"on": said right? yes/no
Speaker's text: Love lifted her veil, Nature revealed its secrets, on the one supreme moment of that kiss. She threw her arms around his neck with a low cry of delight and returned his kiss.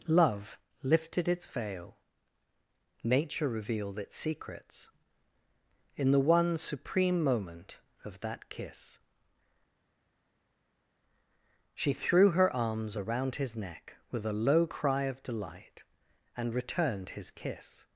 no